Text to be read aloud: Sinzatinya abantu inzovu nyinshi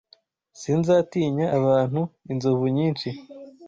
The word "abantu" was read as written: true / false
true